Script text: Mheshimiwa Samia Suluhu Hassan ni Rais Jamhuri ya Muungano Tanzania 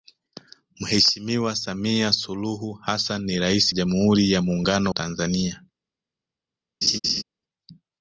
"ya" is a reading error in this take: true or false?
false